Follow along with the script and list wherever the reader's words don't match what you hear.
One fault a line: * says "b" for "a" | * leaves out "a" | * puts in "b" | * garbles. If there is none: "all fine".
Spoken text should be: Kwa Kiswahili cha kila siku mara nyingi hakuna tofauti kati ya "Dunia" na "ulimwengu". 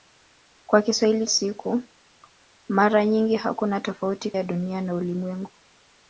* leaves out "cha kila"
* leaves out "kati"